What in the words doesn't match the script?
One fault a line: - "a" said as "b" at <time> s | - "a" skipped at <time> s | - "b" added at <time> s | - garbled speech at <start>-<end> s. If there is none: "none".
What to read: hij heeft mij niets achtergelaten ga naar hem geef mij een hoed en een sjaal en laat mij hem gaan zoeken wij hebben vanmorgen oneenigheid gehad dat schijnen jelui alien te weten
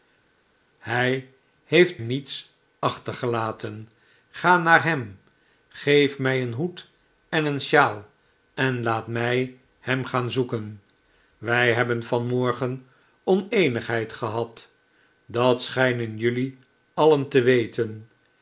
- "mij" skipped at 2.0 s